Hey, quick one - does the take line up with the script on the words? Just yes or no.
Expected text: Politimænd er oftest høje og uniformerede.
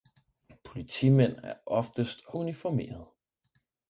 no